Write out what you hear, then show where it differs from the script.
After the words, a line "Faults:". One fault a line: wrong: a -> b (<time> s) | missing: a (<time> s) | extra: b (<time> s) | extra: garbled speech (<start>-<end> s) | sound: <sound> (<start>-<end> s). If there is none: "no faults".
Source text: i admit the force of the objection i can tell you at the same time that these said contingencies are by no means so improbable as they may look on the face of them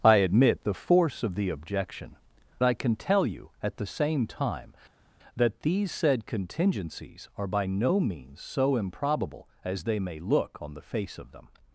i admit the force of the objection i can tell you at the same time that these said contingencies are by no means so improbable as they may look on the face of them
Faults:
no faults